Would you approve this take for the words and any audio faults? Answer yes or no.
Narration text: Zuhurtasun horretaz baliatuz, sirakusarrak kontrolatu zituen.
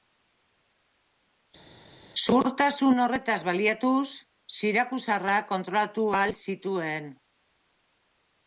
no